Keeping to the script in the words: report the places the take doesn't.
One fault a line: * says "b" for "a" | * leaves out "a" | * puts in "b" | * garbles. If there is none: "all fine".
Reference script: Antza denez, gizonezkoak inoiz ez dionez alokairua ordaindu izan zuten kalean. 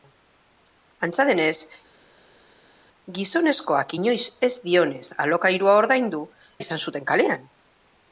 all fine